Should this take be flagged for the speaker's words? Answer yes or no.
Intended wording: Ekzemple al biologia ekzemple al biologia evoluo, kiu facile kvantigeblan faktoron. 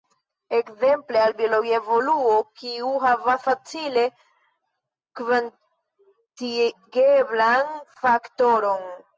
yes